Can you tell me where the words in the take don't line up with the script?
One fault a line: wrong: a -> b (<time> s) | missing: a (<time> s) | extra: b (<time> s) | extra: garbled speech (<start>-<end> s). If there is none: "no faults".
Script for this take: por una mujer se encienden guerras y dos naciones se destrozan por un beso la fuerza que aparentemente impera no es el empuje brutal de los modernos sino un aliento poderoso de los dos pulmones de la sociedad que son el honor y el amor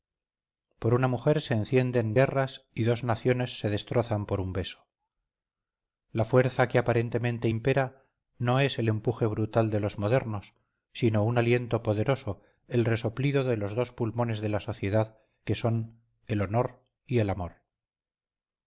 extra: el resoplido (12.7 s)